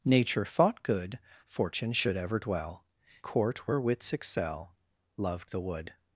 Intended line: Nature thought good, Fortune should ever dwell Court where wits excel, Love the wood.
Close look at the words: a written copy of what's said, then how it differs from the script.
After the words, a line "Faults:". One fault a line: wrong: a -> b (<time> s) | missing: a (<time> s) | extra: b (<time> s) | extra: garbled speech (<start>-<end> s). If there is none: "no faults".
Nature thought good, Fortune should ever dwell Court where wits excel, Love the wood.
Faults:
no faults